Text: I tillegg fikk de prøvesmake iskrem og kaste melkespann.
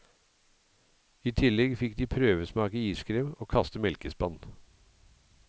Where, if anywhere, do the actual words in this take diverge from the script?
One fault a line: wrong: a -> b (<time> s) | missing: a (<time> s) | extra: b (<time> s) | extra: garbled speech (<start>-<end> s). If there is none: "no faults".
no faults